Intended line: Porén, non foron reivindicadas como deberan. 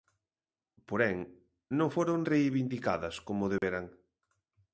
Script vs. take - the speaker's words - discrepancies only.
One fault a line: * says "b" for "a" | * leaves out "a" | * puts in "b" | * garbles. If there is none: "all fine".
all fine